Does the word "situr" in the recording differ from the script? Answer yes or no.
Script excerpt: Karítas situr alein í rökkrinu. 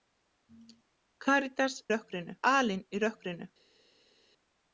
yes